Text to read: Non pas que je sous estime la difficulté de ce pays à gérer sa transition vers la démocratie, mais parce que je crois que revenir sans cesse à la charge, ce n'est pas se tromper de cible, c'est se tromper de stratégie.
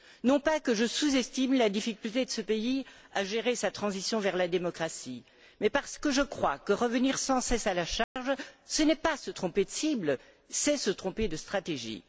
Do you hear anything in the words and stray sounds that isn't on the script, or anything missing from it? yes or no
yes